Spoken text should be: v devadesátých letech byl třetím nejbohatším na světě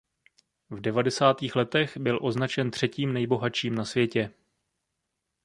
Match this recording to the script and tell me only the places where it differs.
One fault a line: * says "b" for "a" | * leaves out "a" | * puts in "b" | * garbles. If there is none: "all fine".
* puts in "označen"